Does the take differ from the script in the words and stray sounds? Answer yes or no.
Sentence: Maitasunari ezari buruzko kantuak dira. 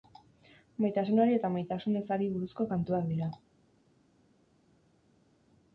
yes